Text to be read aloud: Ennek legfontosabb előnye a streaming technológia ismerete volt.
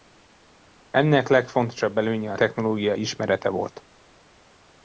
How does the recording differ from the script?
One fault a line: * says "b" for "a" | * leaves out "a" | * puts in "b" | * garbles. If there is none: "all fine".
* leaves out "streaming"